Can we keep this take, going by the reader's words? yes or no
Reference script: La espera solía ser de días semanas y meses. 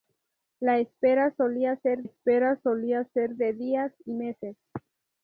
no